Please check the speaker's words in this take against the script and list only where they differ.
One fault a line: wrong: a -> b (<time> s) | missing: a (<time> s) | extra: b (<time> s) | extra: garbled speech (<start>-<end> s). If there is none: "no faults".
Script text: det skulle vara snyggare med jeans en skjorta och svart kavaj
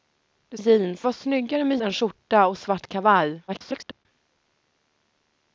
wrong: skulle -> jeans (0.6 s)
missing: jeans (1.8 s)
extra: garbled speech (3.5-4.1 s)